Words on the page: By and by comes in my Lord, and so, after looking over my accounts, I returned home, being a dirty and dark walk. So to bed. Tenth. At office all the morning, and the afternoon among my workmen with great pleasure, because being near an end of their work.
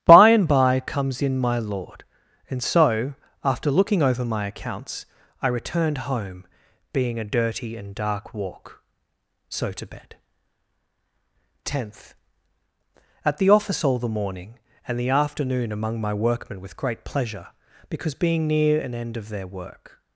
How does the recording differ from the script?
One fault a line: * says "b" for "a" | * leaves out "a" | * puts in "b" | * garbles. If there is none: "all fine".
* puts in "the"